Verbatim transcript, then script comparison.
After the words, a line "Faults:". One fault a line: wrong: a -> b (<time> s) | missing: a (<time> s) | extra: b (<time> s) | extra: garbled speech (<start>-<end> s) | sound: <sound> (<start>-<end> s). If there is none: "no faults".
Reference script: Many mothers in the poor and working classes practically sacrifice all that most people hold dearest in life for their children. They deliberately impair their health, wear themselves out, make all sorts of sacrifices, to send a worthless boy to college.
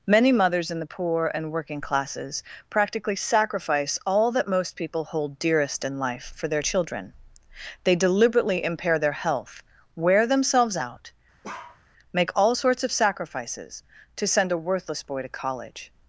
Many mothers in the poor and working classes practically sacrifice all that most people hold dearest in life for their children. They deliberately impair their health, wear themselves out, make all sorts of sacrifices, to send a worthless boy to college.
Faults:
sound: bark (11.4-11.8 s)